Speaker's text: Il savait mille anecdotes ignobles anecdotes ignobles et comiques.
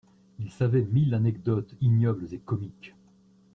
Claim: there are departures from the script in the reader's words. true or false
true